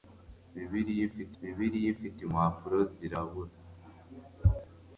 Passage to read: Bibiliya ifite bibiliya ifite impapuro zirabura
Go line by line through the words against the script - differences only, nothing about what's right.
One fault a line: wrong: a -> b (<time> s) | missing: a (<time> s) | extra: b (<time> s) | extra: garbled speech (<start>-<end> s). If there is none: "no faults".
no faults